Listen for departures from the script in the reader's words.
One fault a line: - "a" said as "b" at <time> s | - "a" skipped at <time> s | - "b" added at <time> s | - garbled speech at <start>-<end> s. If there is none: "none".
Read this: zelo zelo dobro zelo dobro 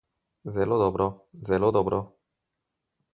- "zelo" skipped at 0.8 s